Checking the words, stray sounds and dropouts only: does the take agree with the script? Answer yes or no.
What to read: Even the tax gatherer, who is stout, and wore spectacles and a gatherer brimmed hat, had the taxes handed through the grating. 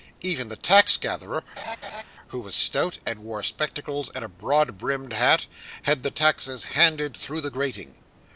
no